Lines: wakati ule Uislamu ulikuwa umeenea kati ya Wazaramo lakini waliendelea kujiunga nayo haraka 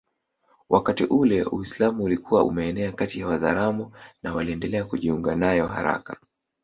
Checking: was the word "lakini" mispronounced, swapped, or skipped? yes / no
yes